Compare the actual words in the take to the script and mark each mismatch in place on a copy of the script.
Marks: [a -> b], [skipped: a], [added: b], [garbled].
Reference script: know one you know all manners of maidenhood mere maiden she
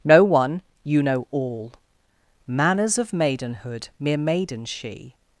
know one you know all manners of maidenhood mere maiden she